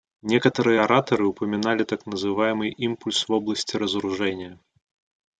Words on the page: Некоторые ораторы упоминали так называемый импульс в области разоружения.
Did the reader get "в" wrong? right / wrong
right